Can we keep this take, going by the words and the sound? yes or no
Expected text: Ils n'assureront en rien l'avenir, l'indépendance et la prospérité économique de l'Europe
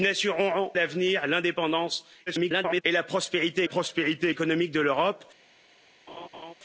no